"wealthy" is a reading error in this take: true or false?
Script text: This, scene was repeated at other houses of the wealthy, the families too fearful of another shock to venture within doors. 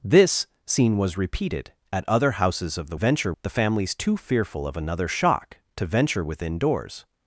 true